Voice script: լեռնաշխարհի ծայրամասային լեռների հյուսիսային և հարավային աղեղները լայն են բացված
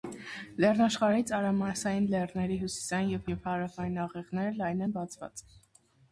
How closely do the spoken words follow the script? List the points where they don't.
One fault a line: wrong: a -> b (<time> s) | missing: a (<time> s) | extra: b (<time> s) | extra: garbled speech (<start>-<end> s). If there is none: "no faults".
extra: և (3.3 s)